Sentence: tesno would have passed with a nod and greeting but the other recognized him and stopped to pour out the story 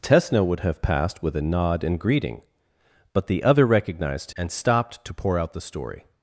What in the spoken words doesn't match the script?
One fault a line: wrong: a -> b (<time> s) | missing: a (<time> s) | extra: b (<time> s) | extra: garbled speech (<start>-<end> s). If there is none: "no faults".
missing: him (4.3 s)